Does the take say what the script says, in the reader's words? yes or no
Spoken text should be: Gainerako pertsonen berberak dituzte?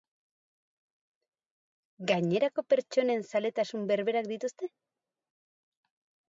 no